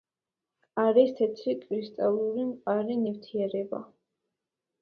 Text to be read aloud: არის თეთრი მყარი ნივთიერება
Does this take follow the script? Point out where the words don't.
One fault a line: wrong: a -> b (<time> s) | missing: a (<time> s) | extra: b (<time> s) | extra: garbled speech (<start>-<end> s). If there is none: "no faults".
extra: კრისტალური (1.6 s)